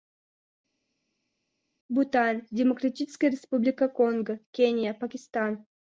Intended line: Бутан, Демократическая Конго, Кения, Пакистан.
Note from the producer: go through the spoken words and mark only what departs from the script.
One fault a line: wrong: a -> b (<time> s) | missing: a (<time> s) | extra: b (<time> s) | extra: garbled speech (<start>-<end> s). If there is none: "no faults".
extra: Республика (3.3 s)